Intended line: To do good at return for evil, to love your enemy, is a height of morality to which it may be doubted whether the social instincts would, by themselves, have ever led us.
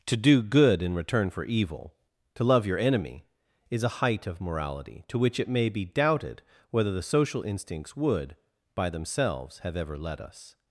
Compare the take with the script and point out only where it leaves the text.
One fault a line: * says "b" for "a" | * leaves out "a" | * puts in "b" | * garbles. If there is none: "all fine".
* says "in" for "at"